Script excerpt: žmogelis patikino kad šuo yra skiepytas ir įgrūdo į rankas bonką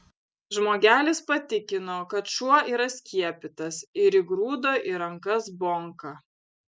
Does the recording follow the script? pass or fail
pass